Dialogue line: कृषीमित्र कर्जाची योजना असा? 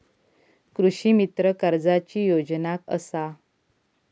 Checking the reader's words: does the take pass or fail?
pass